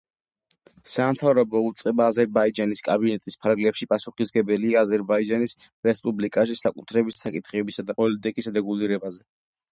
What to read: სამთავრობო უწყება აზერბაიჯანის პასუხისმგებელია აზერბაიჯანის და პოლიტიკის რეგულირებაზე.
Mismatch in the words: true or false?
true